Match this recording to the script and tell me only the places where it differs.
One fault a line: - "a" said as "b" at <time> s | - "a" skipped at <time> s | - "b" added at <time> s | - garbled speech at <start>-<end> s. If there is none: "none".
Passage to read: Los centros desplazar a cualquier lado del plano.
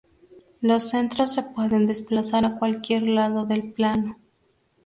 - "se pueden" added at 1.3 s